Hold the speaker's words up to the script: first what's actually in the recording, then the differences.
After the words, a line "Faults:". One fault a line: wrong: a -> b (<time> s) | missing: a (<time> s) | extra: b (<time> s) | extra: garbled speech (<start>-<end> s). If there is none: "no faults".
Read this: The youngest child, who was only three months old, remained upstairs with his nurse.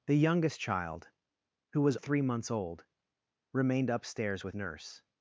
The youngest child, who was three months old, remained upstairs with nurse.
Faults:
missing: only (1.9 s)
missing: his (4.6 s)